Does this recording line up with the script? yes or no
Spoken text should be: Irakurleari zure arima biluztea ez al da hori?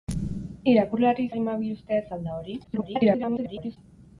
no